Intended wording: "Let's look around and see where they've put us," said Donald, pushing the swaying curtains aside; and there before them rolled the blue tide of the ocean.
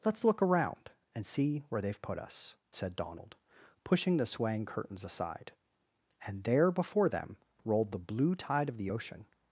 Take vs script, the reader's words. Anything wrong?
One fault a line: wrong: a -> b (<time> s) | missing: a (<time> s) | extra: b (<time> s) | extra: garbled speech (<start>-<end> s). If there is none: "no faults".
no faults